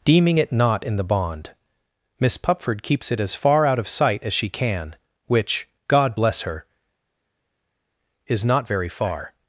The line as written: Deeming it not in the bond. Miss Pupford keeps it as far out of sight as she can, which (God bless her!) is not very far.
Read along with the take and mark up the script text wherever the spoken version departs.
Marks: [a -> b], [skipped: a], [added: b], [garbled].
Deeming it not in the bond. Miss Pupford keeps it as far out of sight as she can, which (God bless her!) is not very far.